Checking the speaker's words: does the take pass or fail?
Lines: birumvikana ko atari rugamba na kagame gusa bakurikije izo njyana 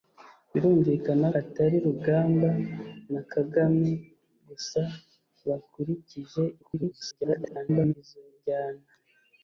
fail